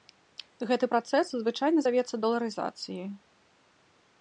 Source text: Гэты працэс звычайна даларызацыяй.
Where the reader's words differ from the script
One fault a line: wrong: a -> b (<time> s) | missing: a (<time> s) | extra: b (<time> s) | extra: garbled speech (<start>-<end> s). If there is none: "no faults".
extra: завецца (1.9 s)